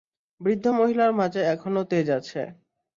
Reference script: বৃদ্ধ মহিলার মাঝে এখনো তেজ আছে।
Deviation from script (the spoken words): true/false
false